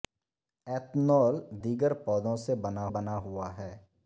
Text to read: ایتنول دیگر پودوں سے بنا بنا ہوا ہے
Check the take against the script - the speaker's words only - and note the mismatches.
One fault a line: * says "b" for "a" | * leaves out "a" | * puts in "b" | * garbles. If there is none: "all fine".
all fine